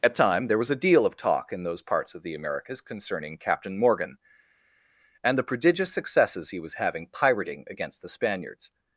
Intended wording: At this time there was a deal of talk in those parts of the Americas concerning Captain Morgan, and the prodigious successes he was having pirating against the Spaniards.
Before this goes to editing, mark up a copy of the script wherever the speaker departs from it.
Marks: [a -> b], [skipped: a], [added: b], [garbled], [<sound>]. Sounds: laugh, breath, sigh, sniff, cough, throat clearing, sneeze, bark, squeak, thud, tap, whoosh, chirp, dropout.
At [skipped: this] time there was a deal of talk in those parts of the Americas concerning Captain Morgan, and the prodigious successes he was having pirating against the Spaniards.